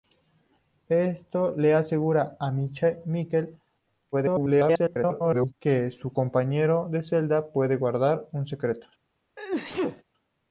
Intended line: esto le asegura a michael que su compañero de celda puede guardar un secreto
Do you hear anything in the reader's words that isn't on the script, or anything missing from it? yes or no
yes